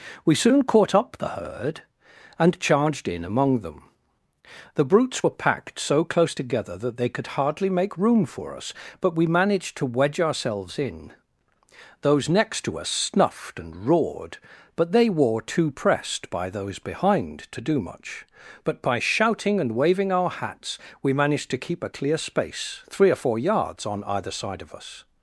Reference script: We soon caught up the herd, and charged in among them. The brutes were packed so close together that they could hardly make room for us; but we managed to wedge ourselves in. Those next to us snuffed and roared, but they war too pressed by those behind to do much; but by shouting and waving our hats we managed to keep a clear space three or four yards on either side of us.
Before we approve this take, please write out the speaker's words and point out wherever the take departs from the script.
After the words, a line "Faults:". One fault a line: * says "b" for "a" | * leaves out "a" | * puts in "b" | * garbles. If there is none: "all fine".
We soon caught up the herd, and charged in among them. The brutes were packed so close together that they could hardly make room for us; but we managed to wedge ourselves in. Those next to us snuffed and roared, but they were too pressed by those behind to do much; but by shouting and waving our hats we managed to keep a clear space three or four yards on either side of us.
Faults:
* says "were" for "war"